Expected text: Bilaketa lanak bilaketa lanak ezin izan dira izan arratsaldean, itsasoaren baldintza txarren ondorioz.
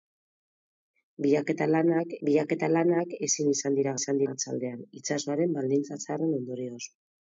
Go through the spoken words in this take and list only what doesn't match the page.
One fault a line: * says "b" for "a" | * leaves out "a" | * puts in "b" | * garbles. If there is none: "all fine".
all fine